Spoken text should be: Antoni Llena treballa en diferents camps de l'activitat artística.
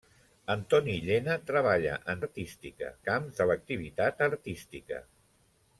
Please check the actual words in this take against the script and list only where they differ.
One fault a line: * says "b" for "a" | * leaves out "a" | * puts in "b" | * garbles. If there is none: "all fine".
* says "artística" for "diferents"